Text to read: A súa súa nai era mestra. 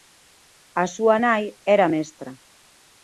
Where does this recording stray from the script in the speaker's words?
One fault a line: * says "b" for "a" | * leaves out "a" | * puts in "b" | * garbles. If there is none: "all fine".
* leaves out "súa"